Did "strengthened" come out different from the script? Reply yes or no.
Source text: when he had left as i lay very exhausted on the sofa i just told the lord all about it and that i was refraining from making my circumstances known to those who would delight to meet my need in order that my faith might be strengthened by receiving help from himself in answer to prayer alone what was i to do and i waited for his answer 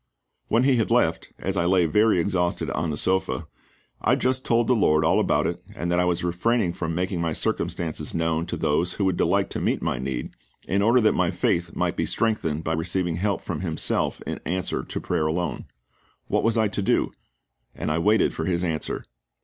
no